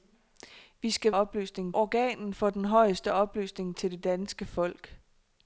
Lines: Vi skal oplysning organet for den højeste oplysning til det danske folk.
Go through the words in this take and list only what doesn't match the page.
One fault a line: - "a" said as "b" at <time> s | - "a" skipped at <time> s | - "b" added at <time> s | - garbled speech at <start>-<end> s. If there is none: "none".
none